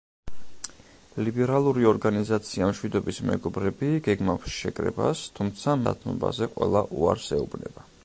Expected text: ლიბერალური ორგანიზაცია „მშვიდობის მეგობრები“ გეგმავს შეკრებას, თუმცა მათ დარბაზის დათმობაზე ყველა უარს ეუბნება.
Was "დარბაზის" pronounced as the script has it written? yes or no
no